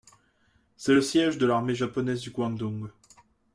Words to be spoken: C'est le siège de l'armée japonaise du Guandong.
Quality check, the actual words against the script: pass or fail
pass